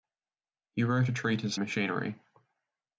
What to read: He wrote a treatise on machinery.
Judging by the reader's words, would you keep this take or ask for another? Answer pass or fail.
fail